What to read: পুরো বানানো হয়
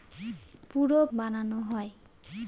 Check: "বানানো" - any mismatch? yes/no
no